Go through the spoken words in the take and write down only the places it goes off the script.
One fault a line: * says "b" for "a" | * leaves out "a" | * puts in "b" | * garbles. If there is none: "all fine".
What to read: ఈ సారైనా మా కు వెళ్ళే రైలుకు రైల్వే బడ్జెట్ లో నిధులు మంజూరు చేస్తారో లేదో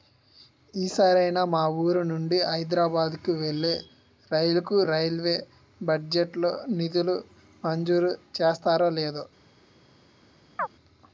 * puts in "వూరు నుండి హైదరబాద్"